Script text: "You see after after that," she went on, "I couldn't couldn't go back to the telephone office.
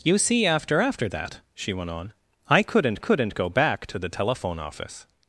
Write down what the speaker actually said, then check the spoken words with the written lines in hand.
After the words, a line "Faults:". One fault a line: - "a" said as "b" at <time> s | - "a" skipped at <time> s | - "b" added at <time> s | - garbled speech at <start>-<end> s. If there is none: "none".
"You see after after that," she went on, "I couldn't couldn't go back to the telephone office.
Faults:
none